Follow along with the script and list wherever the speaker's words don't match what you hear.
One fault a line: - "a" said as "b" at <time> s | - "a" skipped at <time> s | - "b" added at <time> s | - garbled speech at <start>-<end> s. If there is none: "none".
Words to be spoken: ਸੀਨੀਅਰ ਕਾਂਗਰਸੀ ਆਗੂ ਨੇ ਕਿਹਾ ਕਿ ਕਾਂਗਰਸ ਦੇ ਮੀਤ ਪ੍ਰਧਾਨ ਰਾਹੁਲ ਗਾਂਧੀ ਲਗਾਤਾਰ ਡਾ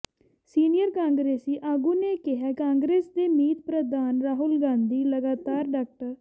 - "ਕਿ" skipped at 2.5 s